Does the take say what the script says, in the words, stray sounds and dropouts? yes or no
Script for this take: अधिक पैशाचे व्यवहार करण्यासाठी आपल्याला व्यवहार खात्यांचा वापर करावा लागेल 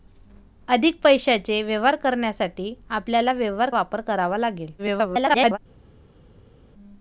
no